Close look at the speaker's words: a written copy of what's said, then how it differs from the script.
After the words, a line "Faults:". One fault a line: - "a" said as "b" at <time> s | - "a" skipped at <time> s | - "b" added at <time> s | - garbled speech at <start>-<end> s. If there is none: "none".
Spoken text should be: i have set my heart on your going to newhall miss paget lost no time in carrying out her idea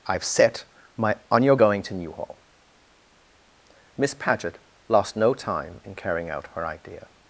i have set my on your going to newhall miss paget lost no time in carrying out her idea
Faults:
- "heart" skipped at 1.2 s